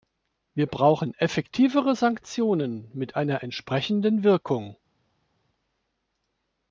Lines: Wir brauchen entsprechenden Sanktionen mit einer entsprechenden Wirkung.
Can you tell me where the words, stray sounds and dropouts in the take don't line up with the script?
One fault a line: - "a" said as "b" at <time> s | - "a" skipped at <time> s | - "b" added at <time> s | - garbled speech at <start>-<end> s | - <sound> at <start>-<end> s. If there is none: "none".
- "entsprechenden" said as "effektivere" at 1.1 s